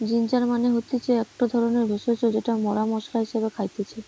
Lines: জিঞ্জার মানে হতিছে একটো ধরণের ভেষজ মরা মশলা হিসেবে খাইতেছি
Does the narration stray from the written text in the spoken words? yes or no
yes